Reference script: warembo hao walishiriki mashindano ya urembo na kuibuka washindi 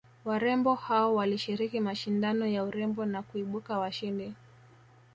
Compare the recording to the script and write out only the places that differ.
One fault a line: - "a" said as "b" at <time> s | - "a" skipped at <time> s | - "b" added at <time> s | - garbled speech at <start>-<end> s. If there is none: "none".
none